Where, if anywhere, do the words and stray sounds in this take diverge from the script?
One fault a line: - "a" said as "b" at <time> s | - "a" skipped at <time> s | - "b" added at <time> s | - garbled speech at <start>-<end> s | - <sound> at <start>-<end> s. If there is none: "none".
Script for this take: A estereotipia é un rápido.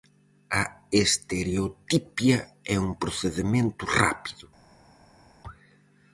- "procedemento" added at 3.0 s